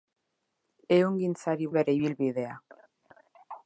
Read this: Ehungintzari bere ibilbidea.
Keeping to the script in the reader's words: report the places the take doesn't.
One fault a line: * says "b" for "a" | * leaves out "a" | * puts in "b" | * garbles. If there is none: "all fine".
all fine